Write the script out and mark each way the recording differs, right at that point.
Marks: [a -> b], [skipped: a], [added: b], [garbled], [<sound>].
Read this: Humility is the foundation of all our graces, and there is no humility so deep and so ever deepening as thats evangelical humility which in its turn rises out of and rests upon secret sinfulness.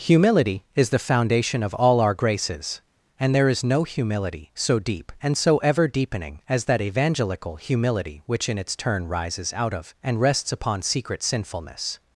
Humility is the foundation of all our graces, and there is no humility so deep and so ever deepening as [thats -> that] evangelical humility which in its turn rises out of and rests upon secret sinfulness.